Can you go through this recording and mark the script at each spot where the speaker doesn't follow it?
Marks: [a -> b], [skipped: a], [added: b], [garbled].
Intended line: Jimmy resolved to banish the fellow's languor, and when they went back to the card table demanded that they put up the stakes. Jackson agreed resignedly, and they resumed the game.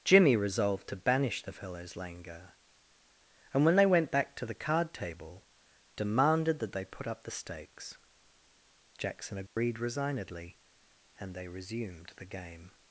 Jimmy resolved to banish the fellow's languor, and when they went back to the card table demanded that they put up the stakes. Jackson agreed resignedly, and they resumed the game.